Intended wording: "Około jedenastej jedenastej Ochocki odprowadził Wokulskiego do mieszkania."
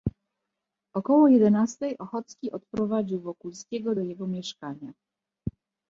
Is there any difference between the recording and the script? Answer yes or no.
yes